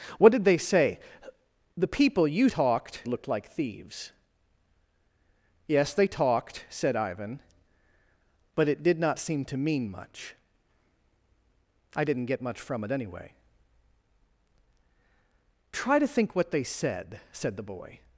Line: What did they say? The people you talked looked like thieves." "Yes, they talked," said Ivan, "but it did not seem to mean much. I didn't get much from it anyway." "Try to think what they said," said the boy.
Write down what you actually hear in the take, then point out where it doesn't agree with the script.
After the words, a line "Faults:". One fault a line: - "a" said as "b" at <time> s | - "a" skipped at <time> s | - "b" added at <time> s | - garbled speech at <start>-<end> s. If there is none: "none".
What did they say? The people you talked looked like thieves." "Yes, they talked," said Ivan, "but it did not seem to mean much. I didn't get much from it anyway." "Try to think what they said," said the boy.
Faults:
none